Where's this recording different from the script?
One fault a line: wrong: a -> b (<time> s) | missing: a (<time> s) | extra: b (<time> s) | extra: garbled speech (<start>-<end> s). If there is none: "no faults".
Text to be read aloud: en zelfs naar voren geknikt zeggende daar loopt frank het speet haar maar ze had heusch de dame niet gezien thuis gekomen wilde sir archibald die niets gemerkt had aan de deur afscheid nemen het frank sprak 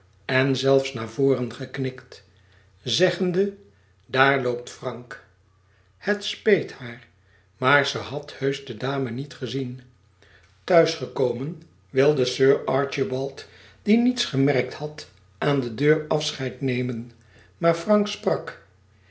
wrong: het -> maar (17.6 s)